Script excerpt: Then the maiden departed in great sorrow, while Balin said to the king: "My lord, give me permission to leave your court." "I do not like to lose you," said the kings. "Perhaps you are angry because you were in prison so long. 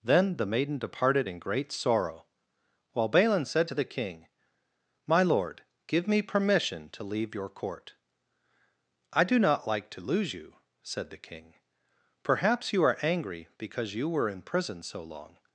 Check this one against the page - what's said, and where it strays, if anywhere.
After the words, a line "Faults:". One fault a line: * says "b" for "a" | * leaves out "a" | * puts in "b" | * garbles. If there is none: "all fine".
Then the maiden departed in great sorrow, while Balin said to the king: "My lord, give me permission to leave your court." "I do not like to lose you," said the king. "Perhaps you are angry because you were in prison so long.
Faults:
* says "king" for "kings"